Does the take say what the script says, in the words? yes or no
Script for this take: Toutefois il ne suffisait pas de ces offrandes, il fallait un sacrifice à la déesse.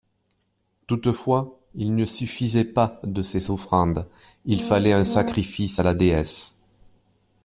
yes